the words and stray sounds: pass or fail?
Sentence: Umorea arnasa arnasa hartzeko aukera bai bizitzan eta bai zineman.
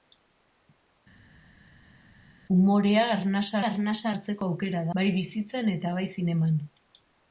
pass